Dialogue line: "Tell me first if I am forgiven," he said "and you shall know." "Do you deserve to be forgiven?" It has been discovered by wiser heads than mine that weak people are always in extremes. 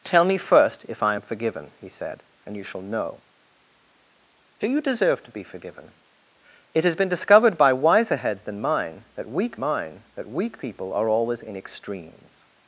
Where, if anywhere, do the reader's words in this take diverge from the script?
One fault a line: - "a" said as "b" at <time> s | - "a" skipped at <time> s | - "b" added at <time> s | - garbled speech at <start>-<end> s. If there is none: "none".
- "mine that weak" added at 9.6 s